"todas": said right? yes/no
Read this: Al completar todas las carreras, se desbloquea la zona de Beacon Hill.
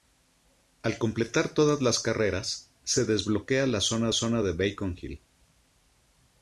yes